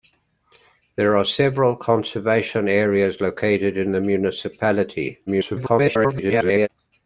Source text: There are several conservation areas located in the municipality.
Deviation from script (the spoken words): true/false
true